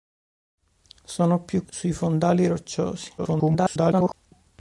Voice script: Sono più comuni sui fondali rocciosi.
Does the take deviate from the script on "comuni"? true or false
true